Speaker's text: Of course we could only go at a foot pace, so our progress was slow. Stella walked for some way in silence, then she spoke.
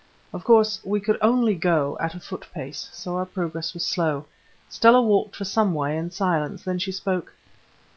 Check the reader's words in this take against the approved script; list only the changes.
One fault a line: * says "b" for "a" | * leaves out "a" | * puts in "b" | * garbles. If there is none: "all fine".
all fine